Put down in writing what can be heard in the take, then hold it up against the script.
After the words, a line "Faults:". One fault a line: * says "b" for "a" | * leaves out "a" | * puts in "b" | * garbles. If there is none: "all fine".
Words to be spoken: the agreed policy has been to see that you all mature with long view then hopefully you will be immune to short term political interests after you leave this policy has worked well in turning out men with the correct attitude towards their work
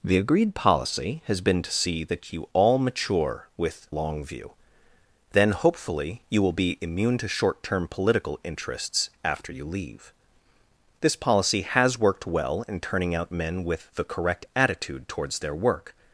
the agreed policy has been to see that you all mature with long view then hopefully you will be immune to short term political interests after you leave this policy has worked well in turning out men with the correct attitude towards their work
Faults:
all fine